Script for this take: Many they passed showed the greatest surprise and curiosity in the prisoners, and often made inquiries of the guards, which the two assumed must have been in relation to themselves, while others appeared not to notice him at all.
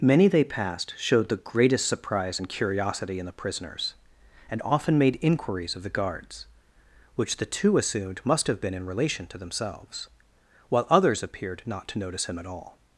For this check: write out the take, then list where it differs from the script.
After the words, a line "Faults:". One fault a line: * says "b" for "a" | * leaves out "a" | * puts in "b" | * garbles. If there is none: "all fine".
Many they passed showed the greatest surprise and curiosity in the prisoners, and often made inquiries of the guards, which the two assumed must have been in relation to themselves, while others appeared not to notice him at all.
Faults:
all fine